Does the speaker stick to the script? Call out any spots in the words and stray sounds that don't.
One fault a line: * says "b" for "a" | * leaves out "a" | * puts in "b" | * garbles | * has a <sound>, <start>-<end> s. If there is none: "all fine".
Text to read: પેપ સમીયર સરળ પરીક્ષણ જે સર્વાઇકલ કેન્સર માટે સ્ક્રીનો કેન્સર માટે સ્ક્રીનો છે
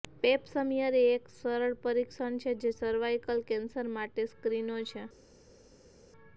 * puts in "એ એક"
* puts in "છે"
* leaves out "કેન્સર માટે સ્ક્રીનો"